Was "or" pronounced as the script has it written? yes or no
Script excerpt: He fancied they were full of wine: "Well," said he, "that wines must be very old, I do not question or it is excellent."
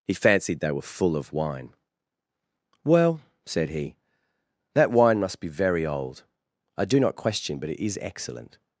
no